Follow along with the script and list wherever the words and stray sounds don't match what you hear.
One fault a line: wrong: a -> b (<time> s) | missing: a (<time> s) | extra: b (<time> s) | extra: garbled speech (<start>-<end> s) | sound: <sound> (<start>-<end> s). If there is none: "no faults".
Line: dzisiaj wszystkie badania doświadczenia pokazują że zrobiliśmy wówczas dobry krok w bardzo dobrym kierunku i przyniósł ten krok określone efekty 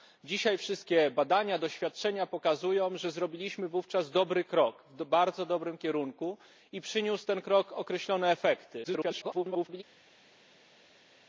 extra: garbled speech (8.8-9.8 s)